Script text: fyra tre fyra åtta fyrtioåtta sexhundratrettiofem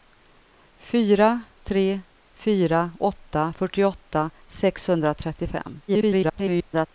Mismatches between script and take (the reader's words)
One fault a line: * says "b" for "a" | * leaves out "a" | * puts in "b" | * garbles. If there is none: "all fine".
* garbles